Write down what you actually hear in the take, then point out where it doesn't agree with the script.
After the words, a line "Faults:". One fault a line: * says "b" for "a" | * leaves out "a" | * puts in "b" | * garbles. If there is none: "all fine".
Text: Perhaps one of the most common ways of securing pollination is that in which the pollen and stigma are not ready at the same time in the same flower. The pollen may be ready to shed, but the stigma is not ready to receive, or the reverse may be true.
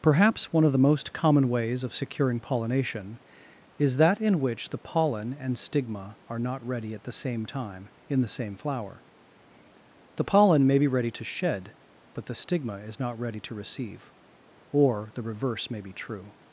Perhaps one of the most common ways of securing pollination is that in which the pollen and stigma are not ready at the same time in the same flower. The pollen may be ready to shed, but the stigma is not ready to receive, or the reverse may be true.
Faults:
all fine